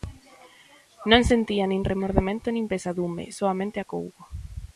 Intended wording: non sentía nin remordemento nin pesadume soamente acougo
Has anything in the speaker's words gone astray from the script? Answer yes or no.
no